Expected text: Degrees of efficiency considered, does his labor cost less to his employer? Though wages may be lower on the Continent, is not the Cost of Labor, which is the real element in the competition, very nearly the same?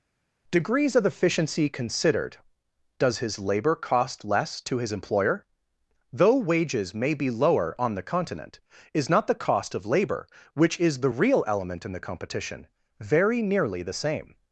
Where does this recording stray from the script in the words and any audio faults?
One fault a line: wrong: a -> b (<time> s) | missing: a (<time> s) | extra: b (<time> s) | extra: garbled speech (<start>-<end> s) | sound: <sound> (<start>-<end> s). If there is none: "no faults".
no faults